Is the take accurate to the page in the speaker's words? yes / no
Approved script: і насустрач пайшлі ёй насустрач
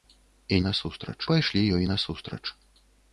yes